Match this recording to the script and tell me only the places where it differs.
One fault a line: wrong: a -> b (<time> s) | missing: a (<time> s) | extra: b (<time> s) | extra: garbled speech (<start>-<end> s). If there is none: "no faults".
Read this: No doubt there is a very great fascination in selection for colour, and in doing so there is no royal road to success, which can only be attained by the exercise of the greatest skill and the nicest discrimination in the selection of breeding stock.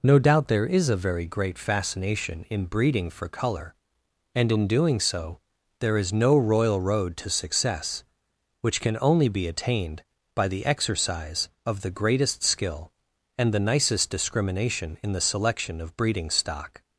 wrong: selection -> breeding (2.6 s)